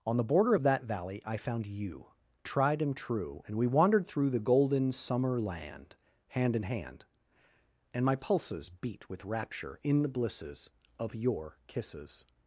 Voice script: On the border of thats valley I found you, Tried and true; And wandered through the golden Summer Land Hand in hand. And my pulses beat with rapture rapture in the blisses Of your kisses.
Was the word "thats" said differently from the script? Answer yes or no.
yes